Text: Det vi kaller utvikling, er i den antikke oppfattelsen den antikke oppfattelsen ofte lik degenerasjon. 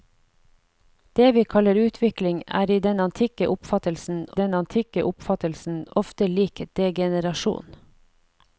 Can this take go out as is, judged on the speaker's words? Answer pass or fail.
pass